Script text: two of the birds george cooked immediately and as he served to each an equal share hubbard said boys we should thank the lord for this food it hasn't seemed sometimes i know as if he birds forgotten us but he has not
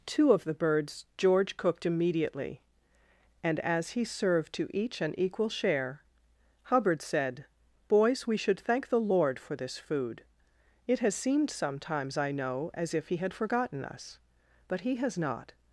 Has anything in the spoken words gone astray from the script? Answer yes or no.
yes